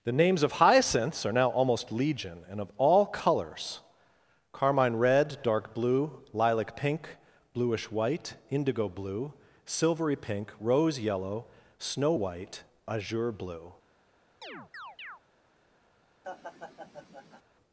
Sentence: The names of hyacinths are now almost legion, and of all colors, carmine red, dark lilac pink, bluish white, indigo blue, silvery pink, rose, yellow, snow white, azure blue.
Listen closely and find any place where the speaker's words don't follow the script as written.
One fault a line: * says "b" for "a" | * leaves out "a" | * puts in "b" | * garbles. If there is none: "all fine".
* puts in "blue"